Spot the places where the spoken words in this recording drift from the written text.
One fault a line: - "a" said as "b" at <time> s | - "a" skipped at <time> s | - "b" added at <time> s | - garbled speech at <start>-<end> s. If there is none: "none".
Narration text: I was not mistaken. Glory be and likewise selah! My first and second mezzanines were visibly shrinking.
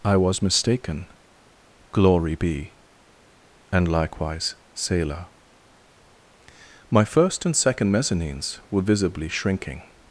- "not" skipped at 0.4 s